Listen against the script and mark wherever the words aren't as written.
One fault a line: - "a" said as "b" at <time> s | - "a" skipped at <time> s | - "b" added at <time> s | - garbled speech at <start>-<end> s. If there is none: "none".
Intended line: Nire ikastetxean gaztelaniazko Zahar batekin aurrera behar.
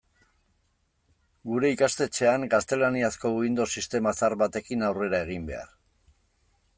- "Nire" said as "Gure" at 1.5 s
- "Windows sistema" added at 3.4 s
- "egin" added at 5.3 s